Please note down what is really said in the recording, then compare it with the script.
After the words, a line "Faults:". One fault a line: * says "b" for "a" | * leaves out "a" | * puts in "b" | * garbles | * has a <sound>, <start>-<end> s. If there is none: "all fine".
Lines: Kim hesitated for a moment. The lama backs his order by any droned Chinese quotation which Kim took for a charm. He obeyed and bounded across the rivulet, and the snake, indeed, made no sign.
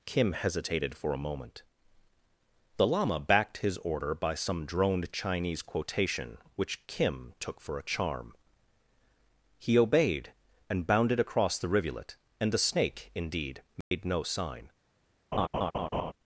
Kim hesitated for a moment. The lama backed his order by some droned Chinese quotation which Kim took for a charm. He obeyed and bounded across the rivulet, and the snake, indeed, made no sign.
Faults:
* says "backed" for "backs"
* says "some" for "any"
* has a dropout, 13.8-13.9 s
* has a laugh, 15.3-16.1 s